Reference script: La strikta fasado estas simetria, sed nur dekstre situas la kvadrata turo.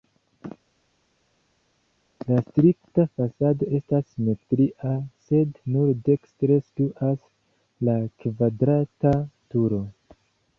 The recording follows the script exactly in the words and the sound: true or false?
true